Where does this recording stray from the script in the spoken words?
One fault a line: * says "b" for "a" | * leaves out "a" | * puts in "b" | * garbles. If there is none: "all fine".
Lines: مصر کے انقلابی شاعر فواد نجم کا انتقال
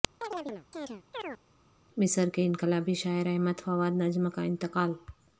* puts in "احمد"